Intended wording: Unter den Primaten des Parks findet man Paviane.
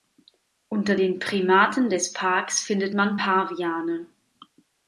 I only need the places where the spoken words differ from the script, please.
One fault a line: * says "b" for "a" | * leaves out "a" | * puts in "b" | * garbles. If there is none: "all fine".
all fine